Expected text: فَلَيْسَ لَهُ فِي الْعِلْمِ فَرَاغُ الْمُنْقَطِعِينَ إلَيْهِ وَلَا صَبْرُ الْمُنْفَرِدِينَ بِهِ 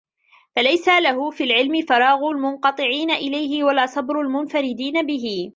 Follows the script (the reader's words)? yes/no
yes